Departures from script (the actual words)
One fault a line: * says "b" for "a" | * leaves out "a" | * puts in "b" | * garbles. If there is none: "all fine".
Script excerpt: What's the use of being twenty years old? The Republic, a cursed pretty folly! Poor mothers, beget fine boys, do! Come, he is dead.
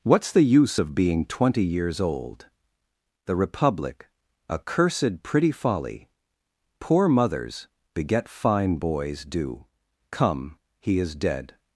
all fine